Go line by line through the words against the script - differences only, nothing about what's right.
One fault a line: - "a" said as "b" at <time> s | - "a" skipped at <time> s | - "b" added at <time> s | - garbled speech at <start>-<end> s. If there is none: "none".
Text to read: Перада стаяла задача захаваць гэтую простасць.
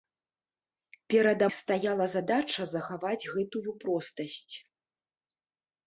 none